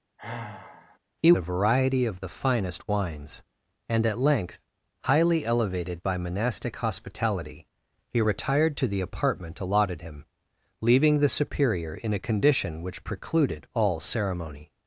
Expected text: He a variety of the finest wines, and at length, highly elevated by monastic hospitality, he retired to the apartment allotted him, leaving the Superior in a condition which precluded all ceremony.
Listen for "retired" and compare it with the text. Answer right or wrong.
right